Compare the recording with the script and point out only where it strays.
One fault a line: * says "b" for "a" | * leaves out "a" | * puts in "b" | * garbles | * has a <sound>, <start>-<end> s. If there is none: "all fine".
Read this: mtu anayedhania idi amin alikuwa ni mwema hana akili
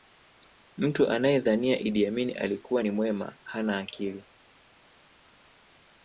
all fine